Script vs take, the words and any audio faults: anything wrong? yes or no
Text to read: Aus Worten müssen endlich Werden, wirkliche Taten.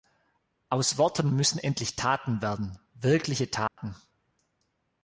yes